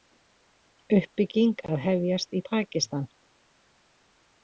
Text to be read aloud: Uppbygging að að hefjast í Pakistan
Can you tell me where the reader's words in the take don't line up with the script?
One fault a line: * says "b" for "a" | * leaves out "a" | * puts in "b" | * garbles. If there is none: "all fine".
* leaves out "að"